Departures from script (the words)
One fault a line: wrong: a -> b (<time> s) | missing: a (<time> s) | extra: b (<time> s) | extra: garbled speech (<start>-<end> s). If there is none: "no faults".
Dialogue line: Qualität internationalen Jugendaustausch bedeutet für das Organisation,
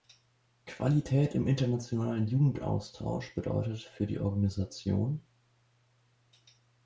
extra: im (1.4 s)
wrong: das -> die (4.1 s)